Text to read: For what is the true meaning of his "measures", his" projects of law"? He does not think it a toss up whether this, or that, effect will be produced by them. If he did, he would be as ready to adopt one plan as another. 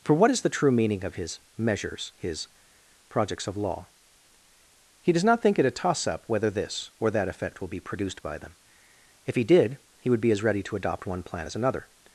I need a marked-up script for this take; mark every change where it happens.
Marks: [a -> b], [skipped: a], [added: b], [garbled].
For what is the true meaning of his "measures", his" projects of law"? He does not think it a toss up whether this, or that, effect will be produced by them. If he did, he would be as ready to adopt one plan as another.